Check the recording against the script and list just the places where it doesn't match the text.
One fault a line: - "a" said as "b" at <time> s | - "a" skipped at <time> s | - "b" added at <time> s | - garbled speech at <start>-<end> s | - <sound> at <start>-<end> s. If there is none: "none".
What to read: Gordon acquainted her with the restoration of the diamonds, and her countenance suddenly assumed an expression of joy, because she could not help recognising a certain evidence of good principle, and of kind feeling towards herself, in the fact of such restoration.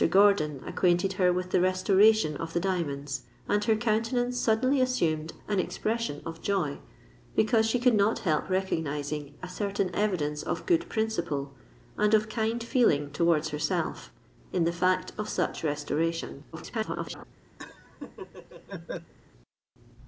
- garbled speech at 16.5-17.2 s
- laugh at 17.6-19.1 s